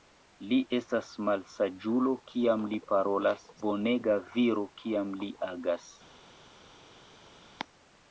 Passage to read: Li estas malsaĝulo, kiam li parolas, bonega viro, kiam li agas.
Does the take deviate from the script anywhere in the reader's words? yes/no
no